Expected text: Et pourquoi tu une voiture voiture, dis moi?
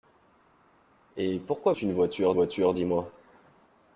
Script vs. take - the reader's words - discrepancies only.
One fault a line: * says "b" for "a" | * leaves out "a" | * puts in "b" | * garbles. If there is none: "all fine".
all fine